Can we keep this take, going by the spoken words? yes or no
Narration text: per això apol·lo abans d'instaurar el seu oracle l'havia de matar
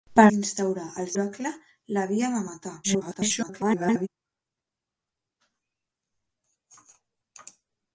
no